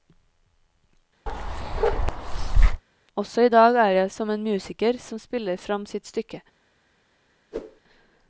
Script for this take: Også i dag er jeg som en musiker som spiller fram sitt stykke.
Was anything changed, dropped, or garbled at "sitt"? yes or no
no